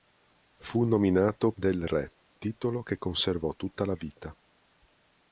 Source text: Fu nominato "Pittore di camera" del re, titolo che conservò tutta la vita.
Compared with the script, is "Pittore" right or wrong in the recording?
wrong